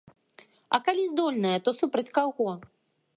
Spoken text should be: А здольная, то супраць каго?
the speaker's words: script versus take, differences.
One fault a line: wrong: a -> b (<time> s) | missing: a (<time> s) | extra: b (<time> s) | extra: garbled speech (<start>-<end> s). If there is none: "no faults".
extra: калі (0.9 s)